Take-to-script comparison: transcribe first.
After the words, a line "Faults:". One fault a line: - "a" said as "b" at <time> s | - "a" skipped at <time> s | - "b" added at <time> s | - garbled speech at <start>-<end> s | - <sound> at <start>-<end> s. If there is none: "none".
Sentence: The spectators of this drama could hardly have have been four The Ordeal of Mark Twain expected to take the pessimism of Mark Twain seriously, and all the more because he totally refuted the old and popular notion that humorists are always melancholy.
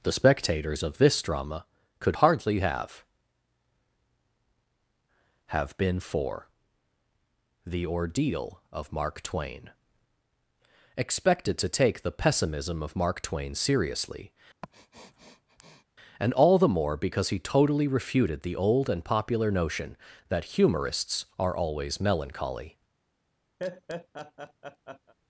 The spectators of this drama could hardly have have been four The Ordeal of Mark Twain expected to take the pessimism of Mark Twain seriously, and all the more because he totally refuted the old and popular notion that humorists are always melancholy.
Faults:
- sniff at 14.6-15.8 s
- laugh at 23.6-25.1 s